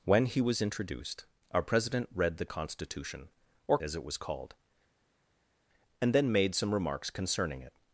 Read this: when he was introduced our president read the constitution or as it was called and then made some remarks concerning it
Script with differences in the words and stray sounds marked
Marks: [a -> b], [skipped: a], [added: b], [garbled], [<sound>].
when he was introduced our president read the constitution or as it was called and then made some remarks concerning it